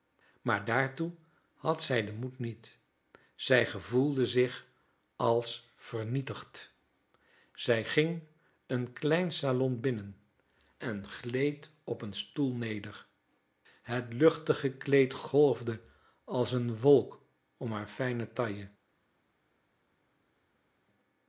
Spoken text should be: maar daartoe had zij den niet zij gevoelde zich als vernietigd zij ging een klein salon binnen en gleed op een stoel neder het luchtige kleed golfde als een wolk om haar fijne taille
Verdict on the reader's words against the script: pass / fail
fail